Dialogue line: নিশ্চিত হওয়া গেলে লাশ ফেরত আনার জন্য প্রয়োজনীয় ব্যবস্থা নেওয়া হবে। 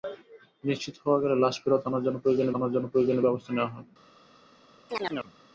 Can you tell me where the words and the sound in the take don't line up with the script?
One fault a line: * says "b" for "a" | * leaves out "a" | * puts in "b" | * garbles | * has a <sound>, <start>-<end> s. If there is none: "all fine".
* puts in "আনার জন্য প্রয়োজনীয়"
* has a chirp, 4.9-5.3 s